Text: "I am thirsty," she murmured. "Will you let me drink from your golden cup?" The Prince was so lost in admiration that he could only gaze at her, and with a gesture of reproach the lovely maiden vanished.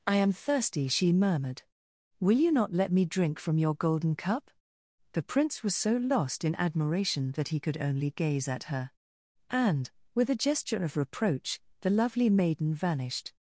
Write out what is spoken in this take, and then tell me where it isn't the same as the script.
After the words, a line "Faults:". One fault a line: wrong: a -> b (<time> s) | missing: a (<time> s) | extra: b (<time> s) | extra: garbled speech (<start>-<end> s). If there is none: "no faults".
"I am thirsty," she murmured. "Will you not let me drink from your golden cup?" The Prince was so lost in admiration that he could only gaze at her, and with a gesture of reproach the lovely maiden vanished.
Faults:
extra: not (2.5 s)